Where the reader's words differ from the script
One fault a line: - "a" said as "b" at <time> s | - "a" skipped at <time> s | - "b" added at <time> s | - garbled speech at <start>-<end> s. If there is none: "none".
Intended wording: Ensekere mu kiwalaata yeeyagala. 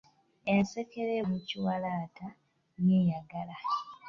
none